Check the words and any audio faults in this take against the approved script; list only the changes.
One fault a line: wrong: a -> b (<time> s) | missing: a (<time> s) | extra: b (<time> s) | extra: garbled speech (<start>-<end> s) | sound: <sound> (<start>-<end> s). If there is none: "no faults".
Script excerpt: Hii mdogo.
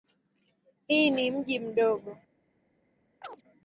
extra: ni mji (1.1 s)
sound: chirp (3.2-3.4 s)